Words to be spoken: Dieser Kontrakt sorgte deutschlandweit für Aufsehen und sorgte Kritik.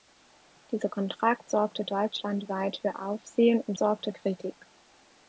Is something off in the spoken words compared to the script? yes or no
no